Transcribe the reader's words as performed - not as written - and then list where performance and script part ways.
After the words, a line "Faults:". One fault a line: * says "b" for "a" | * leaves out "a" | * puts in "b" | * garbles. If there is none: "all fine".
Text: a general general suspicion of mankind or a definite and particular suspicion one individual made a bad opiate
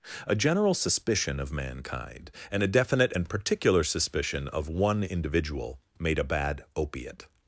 a general suspicion of mankind and a definite and particular suspicion of one individual made a bad opiate
Faults:
* leaves out "general"
* says "and" for "or"
* puts in "of"